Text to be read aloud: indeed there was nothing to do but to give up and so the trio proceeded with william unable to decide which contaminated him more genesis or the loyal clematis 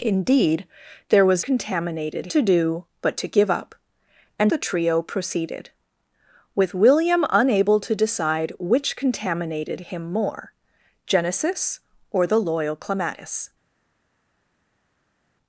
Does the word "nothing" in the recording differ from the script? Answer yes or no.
yes